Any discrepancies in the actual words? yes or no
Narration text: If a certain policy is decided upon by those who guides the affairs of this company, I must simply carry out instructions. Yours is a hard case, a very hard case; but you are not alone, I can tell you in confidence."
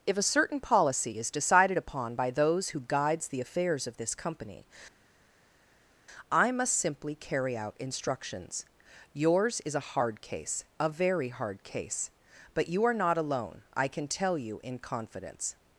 no